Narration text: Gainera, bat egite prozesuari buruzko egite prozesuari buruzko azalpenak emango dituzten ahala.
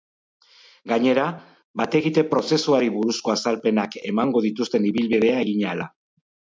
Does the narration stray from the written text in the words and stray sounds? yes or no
yes